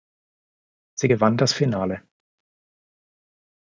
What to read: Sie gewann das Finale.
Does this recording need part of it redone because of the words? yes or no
no